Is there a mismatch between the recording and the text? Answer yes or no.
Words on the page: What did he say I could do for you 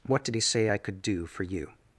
no